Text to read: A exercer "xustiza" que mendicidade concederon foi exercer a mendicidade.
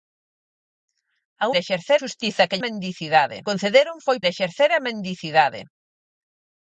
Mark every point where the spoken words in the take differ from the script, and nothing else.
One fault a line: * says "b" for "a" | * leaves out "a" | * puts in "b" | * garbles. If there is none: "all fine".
all fine